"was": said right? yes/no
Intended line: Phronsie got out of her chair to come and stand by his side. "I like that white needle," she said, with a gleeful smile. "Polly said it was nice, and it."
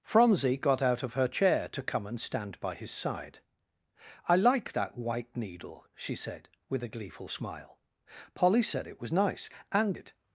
yes